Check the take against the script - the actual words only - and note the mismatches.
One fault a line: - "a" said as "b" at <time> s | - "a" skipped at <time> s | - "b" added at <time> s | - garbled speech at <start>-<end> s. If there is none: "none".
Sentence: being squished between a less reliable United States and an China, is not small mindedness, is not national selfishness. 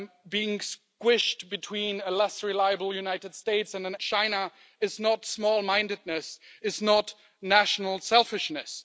none